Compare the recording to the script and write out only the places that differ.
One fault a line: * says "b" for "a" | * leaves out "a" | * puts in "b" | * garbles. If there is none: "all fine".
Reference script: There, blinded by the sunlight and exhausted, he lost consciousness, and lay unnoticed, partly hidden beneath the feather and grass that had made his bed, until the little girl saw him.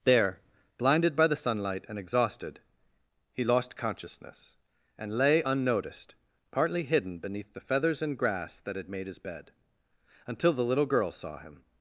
* says "feathers" for "feather"